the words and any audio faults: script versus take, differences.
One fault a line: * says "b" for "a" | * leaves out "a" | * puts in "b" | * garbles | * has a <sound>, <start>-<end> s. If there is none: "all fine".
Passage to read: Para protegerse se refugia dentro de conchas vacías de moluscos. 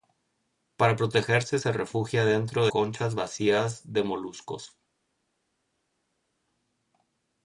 * leaves out "de"